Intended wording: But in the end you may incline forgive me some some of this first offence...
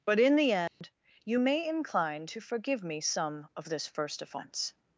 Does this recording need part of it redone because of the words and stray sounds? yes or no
yes